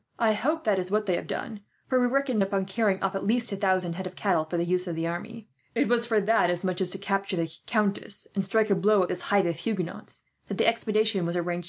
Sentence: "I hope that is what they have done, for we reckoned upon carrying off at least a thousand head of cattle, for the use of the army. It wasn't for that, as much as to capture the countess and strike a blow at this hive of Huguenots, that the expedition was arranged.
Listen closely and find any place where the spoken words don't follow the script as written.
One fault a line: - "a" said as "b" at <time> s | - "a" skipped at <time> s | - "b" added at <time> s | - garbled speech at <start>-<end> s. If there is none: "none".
- "wasn't" said as "was" at 5.9 s